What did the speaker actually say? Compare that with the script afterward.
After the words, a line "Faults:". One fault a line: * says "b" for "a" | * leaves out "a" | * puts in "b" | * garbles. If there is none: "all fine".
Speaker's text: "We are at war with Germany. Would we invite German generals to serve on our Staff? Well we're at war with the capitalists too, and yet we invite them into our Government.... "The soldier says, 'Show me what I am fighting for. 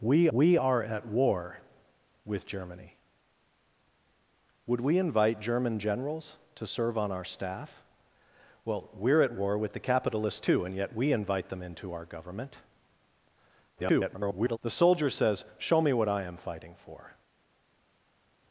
"We we are at war with Germany. Would we invite German generals to serve on our Staff? Well we're at war with the capitalists too, and yet we invite them into our Government.... [garbled] "The soldier says, 'Show me what I am fighting for.
Faults:
* puts in "we"
* garbles